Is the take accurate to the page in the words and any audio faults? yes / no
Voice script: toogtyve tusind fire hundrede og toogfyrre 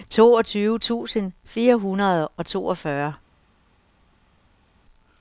yes